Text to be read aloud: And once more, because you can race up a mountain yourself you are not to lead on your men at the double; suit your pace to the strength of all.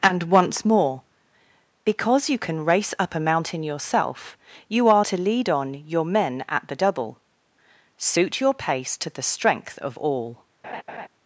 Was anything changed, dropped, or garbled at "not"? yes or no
yes